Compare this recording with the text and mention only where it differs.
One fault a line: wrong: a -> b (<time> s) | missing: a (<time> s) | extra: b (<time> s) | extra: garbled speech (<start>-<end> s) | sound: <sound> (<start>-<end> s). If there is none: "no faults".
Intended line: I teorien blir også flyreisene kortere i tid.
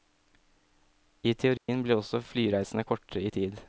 sound: dropout (1.6-1.7 s)